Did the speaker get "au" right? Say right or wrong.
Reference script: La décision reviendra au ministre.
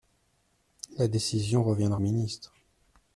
wrong